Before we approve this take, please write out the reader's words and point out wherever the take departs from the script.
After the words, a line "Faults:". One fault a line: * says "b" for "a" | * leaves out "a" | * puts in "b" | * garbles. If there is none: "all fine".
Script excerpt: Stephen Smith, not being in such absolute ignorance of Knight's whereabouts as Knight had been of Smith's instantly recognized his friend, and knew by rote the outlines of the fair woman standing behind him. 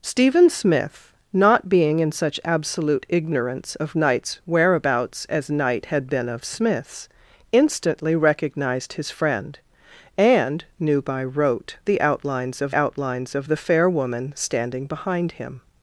Stephen Smith, not being in such absolute ignorance of Knight's whereabouts as Knight had been of Smith's instantly recognized his friend, and knew by rote the outlines of outlines of the fair woman standing behind him.
Faults:
* puts in "outlines of"